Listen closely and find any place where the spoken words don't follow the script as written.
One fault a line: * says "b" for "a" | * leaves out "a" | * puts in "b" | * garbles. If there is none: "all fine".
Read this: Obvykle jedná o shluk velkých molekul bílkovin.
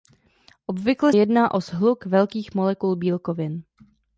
all fine